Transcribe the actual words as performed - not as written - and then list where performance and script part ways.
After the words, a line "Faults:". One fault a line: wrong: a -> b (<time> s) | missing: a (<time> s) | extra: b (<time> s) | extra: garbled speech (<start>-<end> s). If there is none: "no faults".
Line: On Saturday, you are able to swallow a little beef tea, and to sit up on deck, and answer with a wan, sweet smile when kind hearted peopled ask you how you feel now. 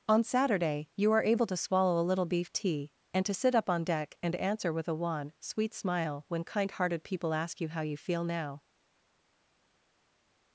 On Saturday, you are able to swallow a little beef tea, and to sit up on deck, and answer with a wan, sweet smile when kind hearted people ask you how you feel now.
Faults:
wrong: peopled -> people (7.0 s)